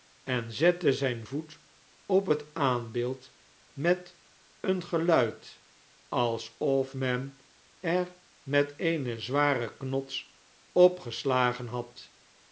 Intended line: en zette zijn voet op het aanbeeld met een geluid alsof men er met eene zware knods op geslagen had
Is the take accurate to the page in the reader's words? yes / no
yes